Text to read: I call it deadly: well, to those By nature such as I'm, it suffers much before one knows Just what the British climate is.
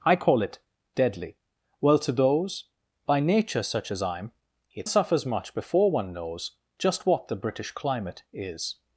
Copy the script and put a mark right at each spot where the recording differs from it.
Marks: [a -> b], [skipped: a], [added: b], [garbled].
I call it deadly: well, to those By nature such as I'm, it suffers much before one knows Just what the British climate is.